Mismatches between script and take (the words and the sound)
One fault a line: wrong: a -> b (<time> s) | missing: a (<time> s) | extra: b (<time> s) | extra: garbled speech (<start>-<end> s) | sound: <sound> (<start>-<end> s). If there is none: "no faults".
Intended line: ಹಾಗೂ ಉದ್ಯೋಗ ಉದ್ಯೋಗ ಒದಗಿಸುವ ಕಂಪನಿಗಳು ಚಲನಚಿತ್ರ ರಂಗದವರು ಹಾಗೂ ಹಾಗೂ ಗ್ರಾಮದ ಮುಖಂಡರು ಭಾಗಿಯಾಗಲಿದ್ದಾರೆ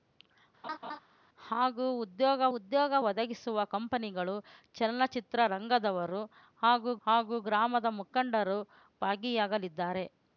sound: laugh (0.6-1.0 s)